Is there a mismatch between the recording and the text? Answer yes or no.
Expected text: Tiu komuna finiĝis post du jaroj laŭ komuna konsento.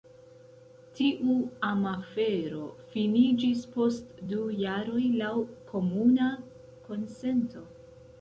yes